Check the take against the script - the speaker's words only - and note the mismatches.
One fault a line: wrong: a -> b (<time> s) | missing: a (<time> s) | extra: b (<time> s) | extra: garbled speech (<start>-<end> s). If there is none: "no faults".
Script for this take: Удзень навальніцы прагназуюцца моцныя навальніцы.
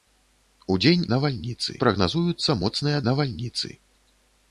no faults